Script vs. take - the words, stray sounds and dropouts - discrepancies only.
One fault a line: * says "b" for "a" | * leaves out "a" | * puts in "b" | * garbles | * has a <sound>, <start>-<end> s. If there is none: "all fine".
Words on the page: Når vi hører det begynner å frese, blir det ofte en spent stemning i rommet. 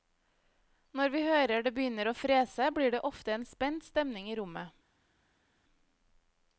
all fine